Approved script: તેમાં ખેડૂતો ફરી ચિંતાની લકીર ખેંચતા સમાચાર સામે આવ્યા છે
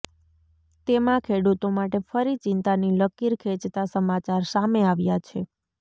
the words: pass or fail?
fail